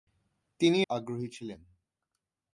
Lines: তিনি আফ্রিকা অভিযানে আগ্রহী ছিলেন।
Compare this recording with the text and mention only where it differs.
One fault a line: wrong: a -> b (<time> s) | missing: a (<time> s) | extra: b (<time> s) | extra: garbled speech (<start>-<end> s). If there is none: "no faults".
missing: আফ্রিকা অভিযানে (0.8 s)